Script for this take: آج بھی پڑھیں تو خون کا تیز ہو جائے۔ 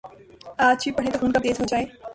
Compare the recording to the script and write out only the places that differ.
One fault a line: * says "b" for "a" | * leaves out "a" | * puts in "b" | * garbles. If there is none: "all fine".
all fine